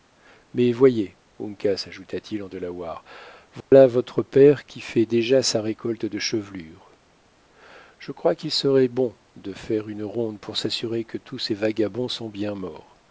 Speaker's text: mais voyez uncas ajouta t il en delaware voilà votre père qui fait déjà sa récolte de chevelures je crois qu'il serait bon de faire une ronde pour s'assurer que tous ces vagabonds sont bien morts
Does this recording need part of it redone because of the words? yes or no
no